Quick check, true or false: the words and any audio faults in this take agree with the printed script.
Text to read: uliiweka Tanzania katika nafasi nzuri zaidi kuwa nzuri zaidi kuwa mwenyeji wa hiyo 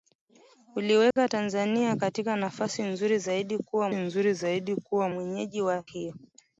false